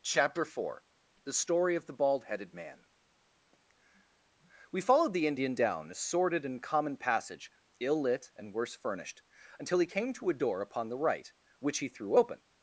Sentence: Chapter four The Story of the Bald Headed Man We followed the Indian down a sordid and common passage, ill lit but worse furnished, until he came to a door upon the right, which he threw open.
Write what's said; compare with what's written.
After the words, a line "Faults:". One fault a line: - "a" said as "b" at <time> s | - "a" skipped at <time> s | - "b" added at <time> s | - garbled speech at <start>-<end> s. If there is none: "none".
Chapter four The Story of the Bald Headed Man We followed the Indian down a sordid and common passage, ill lit and worse furnished, until he came to a door upon the right, which he threw open.
Faults:
- "but" said as "and" at 8.3 s